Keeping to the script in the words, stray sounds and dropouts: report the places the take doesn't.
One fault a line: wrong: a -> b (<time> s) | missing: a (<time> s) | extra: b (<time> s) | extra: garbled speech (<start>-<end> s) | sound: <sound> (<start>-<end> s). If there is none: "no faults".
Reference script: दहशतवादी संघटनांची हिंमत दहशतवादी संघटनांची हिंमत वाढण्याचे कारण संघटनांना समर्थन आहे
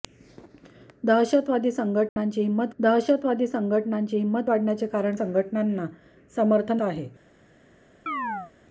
sound: dropout (2.1-2.2 s)
sound: chirp (8.1-8.5 s)